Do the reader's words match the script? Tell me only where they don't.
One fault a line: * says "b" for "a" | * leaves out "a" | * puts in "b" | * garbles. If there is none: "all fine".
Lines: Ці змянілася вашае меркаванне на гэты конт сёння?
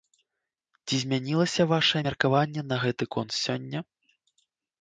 all fine